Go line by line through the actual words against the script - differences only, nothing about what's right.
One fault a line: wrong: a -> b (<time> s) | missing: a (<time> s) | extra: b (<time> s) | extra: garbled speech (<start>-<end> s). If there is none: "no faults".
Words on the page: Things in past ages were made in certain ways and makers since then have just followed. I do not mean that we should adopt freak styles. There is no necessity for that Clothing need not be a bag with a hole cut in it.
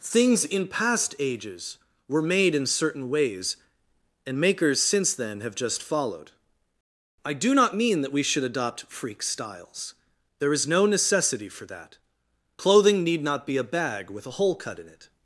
no faults